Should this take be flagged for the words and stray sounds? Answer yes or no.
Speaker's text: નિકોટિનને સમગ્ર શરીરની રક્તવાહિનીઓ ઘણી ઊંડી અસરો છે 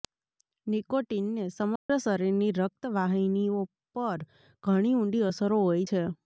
yes